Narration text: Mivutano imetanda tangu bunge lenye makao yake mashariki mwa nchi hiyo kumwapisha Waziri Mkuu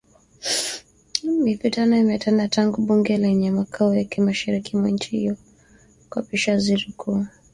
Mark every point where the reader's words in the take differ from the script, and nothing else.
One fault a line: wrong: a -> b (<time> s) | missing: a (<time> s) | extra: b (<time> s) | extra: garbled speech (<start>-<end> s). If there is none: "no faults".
no faults